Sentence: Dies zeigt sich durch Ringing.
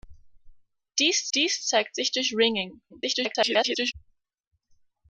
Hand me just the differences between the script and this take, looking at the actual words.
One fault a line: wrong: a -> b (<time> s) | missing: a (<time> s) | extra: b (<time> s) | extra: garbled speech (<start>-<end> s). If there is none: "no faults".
extra: dies (1.3 s)
extra: garbled speech (2.9-3.9 s)